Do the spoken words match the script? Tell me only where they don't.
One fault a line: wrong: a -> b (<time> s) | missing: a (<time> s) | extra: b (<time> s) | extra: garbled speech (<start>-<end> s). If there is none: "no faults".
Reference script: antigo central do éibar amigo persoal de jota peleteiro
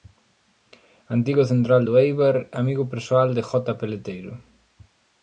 no faults